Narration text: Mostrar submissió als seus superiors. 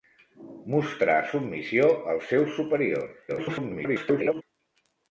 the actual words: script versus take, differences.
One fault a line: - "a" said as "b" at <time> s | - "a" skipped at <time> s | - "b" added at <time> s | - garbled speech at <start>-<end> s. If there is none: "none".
- garbled speech at 3.3-4.4 s